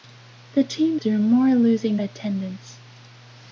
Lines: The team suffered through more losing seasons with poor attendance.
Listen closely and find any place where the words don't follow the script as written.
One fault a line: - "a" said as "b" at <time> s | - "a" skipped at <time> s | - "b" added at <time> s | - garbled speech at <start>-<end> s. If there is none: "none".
- "suffered" skipped at 1.0 s
- "seasons with poor" skipped at 2.0 s